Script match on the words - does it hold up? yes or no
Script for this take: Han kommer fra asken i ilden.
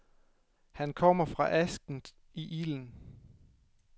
yes